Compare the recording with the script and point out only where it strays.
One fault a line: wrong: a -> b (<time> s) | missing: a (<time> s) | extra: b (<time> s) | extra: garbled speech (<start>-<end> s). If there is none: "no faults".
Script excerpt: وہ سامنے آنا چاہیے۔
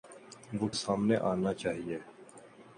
no faults